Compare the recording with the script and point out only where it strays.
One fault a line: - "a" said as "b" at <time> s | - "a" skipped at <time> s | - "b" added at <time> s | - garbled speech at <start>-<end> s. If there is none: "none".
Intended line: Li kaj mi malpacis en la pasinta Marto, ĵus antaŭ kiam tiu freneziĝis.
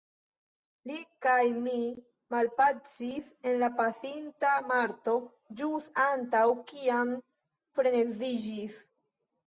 - "tiu" skipped at 7.1 s